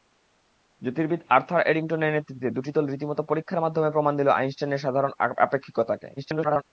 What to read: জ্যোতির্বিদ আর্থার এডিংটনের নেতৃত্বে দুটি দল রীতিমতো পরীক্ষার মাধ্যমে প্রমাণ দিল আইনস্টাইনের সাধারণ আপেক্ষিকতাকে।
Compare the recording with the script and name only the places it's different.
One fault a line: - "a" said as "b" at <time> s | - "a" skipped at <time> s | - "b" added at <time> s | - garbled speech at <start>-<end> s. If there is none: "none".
- garbled speech at 6.2-6.6 s